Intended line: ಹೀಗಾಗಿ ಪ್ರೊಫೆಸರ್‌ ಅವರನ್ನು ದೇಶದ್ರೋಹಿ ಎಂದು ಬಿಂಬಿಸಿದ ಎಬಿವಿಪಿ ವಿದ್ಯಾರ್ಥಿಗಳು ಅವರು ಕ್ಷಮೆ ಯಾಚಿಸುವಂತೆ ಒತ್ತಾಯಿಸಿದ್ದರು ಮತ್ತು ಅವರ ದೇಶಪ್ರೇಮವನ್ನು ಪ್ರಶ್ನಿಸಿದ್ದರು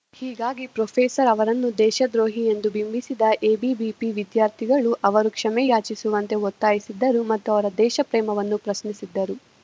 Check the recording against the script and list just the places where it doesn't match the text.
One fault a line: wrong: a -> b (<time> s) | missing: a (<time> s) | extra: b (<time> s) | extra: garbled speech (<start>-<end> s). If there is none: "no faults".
no faults